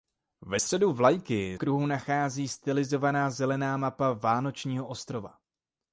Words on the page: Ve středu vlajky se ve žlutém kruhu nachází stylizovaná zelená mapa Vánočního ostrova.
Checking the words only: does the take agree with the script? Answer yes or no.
no